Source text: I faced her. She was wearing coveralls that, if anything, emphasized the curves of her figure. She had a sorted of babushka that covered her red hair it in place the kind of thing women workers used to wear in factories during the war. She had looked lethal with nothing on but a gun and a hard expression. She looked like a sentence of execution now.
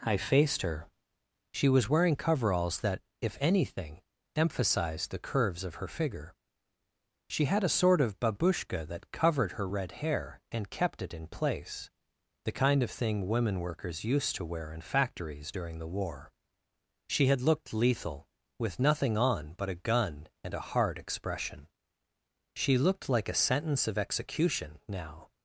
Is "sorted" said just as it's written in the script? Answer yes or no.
no